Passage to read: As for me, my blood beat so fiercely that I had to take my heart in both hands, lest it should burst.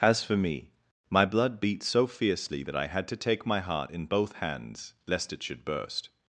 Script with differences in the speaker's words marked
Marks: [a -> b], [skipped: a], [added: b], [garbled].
As for me, my blood beat so fiercely that I had to take my heart in both hands, lest it should burst.